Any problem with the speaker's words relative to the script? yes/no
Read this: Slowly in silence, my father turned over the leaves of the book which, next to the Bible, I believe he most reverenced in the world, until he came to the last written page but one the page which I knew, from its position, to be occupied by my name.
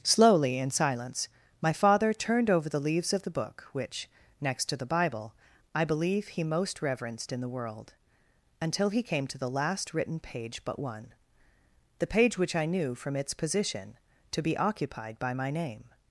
no